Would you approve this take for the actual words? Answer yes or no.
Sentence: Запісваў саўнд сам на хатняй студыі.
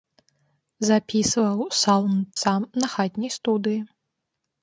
yes